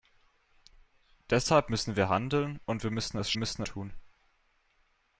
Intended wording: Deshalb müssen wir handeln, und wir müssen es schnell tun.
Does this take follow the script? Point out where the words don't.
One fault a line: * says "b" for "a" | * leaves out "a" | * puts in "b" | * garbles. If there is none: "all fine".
* says "müssen" for "schnell"